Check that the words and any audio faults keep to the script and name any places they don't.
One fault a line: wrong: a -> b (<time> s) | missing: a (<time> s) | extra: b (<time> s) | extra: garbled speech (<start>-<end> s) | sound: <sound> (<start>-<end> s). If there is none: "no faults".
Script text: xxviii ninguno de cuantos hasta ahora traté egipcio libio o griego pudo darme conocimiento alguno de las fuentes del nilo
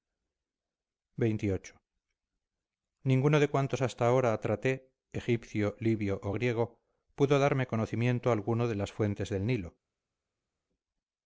no faults